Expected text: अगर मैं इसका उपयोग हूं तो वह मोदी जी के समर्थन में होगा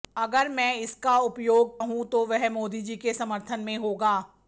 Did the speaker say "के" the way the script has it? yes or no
yes